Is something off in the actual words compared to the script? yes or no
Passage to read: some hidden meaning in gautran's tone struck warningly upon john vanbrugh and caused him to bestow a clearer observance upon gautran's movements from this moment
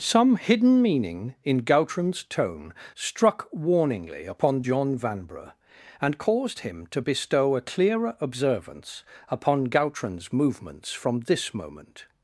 no